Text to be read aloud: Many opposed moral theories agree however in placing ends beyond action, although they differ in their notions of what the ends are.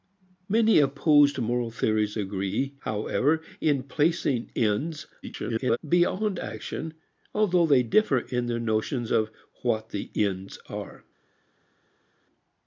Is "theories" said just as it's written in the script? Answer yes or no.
yes